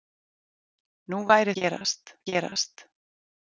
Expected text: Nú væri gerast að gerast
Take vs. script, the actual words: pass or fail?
pass